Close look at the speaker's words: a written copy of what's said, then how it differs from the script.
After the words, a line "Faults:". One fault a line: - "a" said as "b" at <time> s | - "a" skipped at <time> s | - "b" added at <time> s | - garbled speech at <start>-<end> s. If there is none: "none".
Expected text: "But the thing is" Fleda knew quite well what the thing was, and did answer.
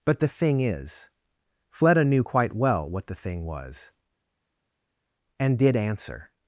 "But the thing is" Fleda knew quite well what the thing was, and did answer.
Faults:
none